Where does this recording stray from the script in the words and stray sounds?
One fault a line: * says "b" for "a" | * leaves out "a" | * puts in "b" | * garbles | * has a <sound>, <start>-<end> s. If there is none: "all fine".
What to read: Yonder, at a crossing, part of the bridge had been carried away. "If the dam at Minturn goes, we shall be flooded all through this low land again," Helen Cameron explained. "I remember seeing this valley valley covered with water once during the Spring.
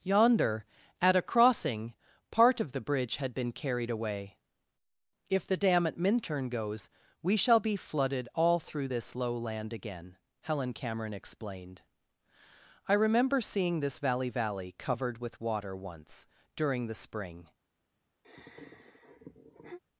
* has a sigh, 18.2-19.8 s